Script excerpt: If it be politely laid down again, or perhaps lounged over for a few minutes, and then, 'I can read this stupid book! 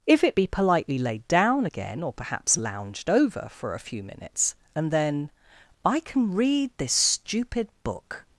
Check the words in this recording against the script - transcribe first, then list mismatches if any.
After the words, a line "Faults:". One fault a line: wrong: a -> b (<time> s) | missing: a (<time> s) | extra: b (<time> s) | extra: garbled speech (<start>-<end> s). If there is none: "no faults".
If it be politely laid down again, or perhaps lounged over for a few minutes, and then, 'I can read this stupid book!
Faults:
no faults